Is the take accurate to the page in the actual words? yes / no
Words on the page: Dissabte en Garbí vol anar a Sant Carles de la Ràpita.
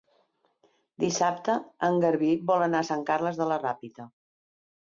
yes